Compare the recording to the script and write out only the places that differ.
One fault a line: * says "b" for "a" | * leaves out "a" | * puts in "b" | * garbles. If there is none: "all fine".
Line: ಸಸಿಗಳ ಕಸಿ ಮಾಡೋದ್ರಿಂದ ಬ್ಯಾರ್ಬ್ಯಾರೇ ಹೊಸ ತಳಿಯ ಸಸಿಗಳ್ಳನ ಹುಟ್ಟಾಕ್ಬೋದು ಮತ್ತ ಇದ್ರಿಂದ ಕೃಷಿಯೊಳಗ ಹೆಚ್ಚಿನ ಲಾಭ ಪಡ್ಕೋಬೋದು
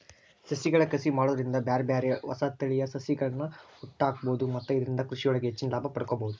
all fine